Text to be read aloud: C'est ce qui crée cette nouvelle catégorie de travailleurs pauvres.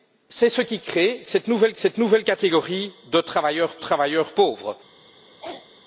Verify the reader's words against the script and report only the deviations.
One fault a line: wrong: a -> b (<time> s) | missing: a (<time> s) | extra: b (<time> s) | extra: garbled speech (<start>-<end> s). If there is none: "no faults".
extra: cette nouvelle (1.7 s)
extra: travailleurs (3.7 s)